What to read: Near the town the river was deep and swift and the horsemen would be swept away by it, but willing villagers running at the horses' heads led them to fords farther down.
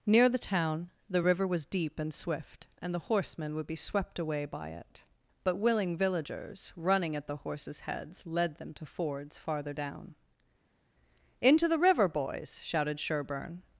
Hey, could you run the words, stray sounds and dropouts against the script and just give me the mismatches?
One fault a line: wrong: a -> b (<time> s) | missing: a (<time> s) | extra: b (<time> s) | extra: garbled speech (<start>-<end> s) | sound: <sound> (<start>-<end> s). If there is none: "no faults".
extra: Into the river boys shouted Sherburne (11.4 s)